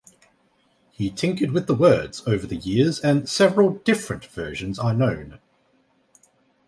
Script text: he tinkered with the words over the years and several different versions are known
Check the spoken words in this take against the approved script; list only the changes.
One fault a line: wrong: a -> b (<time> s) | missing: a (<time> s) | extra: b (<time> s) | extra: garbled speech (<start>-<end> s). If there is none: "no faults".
no faults